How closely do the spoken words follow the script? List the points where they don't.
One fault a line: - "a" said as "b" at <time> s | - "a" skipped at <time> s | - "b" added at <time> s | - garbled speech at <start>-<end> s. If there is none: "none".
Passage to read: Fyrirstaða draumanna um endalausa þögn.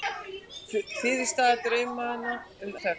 - "endalausa" skipped at 2.8 s